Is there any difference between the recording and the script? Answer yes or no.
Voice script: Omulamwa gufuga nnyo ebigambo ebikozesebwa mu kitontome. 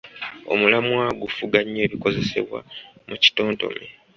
yes